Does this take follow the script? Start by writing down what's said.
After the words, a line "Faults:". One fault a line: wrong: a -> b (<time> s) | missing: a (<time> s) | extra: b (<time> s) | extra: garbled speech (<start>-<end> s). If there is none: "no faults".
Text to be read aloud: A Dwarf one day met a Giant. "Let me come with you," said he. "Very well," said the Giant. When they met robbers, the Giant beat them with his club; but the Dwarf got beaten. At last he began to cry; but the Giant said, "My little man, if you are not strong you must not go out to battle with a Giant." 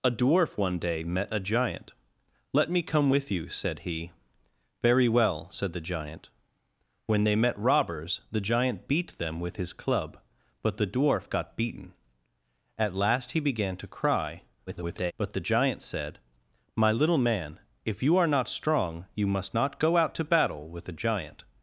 A Dwarf one day met a Giant. "Let me come with you," said he. "Very well," said the Giant. When they met robbers, the Giant beat them with his club; but the Dwarf got beaten. At last he began to cry; [garbled] but the Giant said, "My little man, if you are not strong you must not go out to battle with a Giant."
Faults:
extra: garbled speech (14.7-15.1 s)